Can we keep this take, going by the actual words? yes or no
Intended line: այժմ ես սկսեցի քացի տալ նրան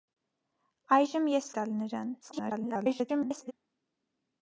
no